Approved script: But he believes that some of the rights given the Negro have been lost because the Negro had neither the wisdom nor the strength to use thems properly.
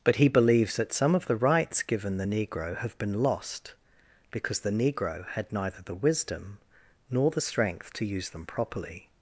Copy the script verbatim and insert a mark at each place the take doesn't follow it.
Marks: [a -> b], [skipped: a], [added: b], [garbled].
But he believes that some of the rights given the Negro have been lost because the Negro had neither the wisdom nor the strength to use [thems -> them] properly.